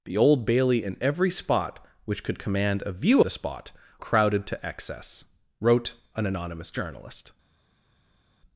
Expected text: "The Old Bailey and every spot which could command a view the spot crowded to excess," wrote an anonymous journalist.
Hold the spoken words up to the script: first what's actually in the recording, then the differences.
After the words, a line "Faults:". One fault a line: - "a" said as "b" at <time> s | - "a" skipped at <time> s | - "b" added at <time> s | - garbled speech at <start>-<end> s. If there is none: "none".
"The Old Bailey and every spot which could command a view the spot crowded to excess," wrote an anonymous journalist.
Faults:
none